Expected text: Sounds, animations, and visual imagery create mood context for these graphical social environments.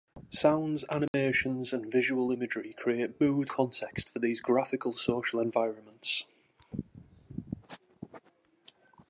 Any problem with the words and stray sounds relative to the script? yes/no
yes